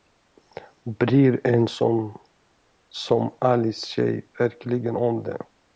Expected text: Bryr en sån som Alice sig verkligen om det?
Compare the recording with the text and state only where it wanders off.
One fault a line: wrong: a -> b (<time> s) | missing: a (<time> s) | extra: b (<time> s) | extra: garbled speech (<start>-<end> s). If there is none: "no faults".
no faults